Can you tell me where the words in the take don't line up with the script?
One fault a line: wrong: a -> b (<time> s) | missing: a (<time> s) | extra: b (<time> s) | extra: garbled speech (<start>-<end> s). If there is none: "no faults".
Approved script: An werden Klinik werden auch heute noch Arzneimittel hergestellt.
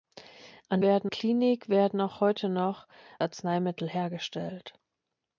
no faults